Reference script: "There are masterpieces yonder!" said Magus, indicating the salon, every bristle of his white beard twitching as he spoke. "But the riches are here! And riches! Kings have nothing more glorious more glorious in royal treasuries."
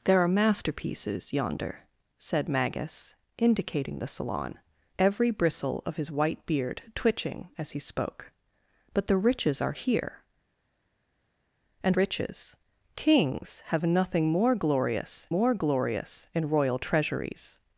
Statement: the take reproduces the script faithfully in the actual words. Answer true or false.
true